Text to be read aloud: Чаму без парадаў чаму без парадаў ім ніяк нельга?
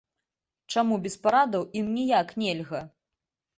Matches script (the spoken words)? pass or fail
fail